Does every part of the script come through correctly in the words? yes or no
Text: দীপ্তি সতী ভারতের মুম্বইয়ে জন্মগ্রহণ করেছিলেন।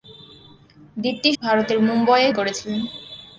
no